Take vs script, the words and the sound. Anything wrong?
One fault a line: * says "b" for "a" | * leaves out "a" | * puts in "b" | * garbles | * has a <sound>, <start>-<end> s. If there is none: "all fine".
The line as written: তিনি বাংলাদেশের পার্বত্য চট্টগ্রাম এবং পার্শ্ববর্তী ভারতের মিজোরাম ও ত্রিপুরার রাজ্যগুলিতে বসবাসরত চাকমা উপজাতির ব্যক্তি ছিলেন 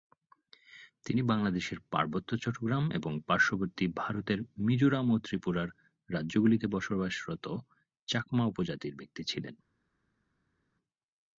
all fine